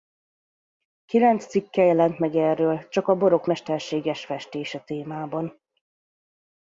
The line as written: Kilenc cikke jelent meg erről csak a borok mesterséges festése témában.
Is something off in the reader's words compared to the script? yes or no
no